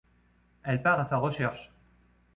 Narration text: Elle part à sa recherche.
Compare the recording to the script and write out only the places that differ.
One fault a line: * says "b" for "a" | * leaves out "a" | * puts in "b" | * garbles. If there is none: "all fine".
all fine